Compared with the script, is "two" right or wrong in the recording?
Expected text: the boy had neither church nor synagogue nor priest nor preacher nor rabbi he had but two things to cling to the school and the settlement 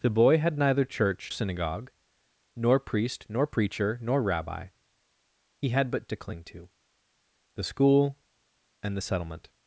wrong